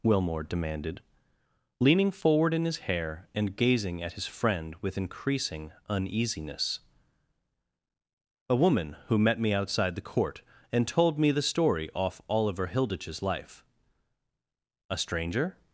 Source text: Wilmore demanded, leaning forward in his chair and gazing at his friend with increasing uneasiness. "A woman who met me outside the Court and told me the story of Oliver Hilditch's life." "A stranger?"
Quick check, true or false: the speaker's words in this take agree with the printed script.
false